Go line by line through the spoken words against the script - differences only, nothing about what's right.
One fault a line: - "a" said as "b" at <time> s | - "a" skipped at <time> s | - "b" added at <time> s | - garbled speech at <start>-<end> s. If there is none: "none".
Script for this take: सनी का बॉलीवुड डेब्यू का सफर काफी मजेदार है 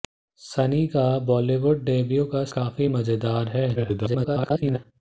- "सफर" skipped at 2.4 s
- garbled speech at 3.8-4.8 s